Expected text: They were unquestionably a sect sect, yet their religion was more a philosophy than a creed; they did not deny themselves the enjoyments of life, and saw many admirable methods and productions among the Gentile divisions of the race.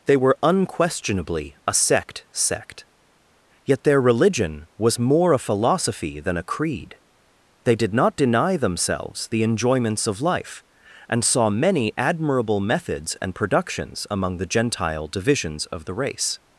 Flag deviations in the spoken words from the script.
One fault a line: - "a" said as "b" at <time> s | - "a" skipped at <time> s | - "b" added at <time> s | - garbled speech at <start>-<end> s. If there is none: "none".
none